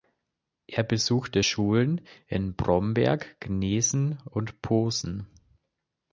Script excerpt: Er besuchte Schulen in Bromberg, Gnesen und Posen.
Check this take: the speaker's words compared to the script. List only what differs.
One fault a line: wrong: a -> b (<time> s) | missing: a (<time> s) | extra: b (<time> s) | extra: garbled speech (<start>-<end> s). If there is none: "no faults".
no faults